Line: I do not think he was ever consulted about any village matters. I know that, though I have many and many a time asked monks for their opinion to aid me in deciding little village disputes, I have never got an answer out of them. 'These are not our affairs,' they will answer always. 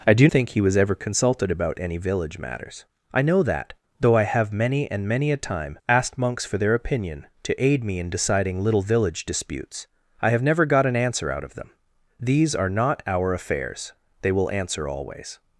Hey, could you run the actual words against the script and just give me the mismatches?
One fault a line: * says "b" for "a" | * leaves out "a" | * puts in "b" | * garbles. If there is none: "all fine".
* leaves out "not"